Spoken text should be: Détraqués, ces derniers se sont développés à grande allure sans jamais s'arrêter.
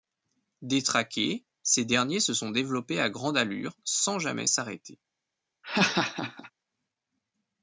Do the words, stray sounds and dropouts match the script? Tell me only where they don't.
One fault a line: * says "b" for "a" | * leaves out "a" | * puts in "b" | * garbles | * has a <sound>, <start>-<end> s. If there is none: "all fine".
* has a laugh, 5.6-6.5 s